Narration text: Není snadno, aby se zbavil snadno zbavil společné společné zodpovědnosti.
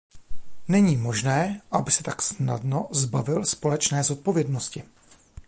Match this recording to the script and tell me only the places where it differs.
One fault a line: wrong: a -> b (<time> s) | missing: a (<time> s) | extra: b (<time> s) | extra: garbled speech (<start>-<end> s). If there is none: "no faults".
wrong: snadno -> možné (0.9 s)
wrong: zbavil -> tak (2.0 s)
missing: společné (4.0 s)